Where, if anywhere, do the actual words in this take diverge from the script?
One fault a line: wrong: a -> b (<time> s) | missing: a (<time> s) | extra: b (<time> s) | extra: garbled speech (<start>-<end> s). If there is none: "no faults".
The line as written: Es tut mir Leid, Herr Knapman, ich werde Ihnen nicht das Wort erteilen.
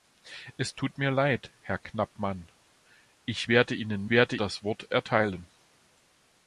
wrong: nicht -> werde (4.1 s)